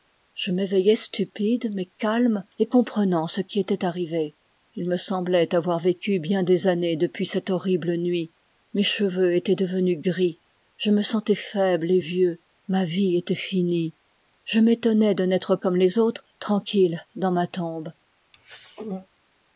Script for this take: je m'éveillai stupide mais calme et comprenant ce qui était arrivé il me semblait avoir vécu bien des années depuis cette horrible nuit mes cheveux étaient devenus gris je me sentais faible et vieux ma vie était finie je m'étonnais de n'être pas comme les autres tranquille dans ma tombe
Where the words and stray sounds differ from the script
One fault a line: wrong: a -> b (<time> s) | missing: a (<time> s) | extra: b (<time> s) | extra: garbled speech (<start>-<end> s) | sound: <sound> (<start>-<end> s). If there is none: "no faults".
missing: pas (15.6 s)
sound: throat clearing (18.3-19.1 s)